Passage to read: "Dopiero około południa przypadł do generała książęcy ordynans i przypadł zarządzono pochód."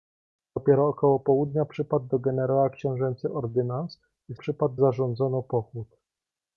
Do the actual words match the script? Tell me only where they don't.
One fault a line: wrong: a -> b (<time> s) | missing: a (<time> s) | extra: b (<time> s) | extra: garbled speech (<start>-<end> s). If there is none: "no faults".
no faults